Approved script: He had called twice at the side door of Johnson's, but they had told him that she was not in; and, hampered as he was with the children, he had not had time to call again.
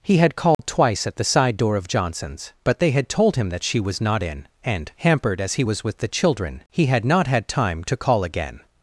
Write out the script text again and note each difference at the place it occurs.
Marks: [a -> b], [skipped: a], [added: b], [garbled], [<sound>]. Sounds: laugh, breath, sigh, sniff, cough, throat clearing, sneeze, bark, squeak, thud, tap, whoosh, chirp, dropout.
He had called [dropout] twice at the side door of Johnson's, but they had told him that she was not in; and, hampered as he was with the children, he had not had time to call again.